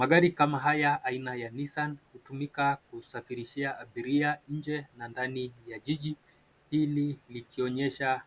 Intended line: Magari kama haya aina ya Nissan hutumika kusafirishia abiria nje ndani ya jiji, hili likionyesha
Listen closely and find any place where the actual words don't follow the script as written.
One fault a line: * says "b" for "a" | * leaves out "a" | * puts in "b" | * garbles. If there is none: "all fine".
* puts in "na"